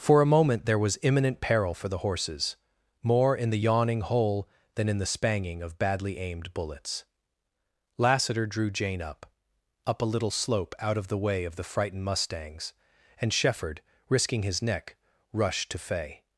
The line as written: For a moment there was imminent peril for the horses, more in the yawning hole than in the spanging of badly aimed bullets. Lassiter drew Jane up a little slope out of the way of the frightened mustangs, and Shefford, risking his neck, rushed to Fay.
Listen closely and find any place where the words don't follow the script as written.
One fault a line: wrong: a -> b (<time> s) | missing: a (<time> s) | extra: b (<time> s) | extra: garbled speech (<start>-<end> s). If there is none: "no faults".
extra: up (9.8 s)